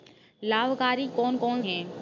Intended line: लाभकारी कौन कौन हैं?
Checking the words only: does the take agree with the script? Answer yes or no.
yes